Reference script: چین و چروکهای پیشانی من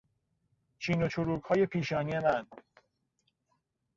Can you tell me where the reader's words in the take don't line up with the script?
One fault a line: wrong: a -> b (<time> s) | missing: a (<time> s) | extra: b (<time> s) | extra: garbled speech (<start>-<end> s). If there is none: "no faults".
no faults